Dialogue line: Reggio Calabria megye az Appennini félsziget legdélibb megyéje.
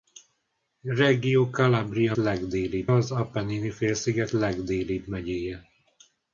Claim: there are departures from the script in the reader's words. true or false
true